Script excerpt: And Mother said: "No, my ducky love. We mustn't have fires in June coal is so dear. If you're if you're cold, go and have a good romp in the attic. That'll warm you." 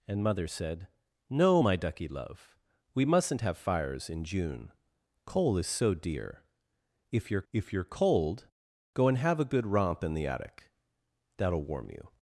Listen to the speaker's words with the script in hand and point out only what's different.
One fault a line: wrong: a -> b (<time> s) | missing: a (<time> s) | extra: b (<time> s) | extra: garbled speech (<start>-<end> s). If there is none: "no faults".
no faults